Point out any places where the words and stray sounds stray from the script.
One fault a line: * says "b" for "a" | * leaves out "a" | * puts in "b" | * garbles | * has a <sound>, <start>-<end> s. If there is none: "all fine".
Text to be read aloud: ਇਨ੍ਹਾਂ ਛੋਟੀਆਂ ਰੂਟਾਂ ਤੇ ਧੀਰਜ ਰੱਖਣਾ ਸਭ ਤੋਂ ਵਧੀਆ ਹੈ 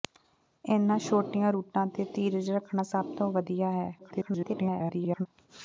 * garbles